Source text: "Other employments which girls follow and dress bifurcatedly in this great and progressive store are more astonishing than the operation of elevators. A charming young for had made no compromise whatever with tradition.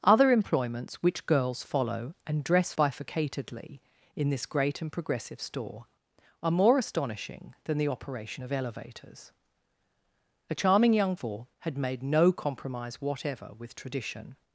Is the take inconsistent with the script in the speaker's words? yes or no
no